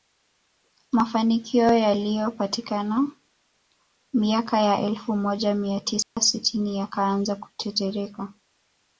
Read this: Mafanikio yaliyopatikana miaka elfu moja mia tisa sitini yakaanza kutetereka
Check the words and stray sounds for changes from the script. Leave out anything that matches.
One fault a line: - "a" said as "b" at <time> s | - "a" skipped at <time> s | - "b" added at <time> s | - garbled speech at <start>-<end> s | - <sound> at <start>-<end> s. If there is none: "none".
- "ya" added at 4.6 s
- dropout at 6.0-6.2 s